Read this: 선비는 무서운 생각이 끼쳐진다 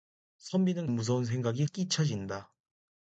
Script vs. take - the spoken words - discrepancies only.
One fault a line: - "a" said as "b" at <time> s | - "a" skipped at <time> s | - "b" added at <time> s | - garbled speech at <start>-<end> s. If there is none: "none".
none